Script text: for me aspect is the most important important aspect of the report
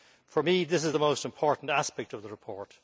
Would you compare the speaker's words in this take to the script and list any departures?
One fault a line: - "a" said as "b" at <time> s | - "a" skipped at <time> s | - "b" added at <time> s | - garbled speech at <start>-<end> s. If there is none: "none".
- "aspect" said as "this" at 0.6 s
- "important" skipped at 1.7 s